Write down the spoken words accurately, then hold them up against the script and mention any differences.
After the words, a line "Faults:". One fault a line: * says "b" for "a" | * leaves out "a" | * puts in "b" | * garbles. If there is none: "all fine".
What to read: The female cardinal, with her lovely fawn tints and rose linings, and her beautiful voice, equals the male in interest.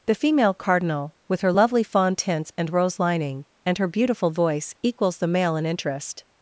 The female cardinal, with her lovely fawn tints and rose lining, and her beautiful voice, equals the male in interest.
Faults:
* says "lining" for "linings"